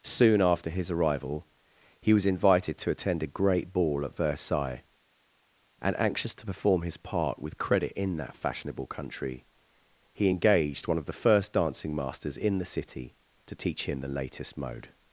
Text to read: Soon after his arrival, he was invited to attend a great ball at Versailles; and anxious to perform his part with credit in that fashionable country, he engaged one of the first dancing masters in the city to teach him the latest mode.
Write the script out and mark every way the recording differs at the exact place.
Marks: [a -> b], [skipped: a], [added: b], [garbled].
Soon after his arrival, he was invited to attend a great ball at Versailles; and anxious to perform his part with credit in that fashionable country, he engaged one of the first dancing masters in the city to teach him the latest mode.